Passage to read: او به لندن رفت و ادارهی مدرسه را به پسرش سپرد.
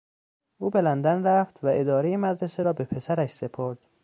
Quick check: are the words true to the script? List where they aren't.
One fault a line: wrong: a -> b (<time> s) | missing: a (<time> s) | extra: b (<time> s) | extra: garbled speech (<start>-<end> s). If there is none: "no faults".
no faults